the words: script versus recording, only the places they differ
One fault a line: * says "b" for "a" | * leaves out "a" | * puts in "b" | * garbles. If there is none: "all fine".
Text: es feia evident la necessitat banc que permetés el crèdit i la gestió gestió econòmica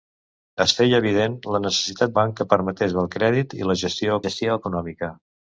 all fine